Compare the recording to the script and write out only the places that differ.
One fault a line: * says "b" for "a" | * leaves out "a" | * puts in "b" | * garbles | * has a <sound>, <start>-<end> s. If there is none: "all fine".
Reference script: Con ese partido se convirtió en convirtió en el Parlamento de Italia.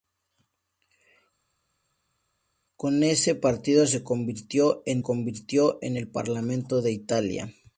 all fine